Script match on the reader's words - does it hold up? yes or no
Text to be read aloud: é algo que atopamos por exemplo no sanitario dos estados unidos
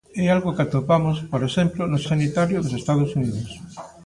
yes